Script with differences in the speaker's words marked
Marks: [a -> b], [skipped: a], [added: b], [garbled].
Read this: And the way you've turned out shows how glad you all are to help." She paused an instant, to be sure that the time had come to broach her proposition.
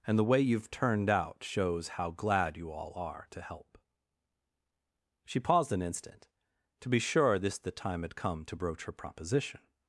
And the way you've turned out shows how glad you all are to help." She paused an instant, to be sure [that -> this] the time had come to broach her proposition.